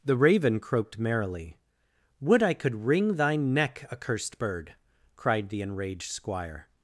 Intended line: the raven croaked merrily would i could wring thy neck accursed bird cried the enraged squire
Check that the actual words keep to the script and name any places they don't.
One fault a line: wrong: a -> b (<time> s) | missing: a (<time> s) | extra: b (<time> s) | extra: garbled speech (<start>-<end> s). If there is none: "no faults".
no faults